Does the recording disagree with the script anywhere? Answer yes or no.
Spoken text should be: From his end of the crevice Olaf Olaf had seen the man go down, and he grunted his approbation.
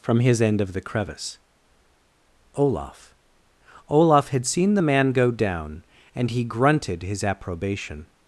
no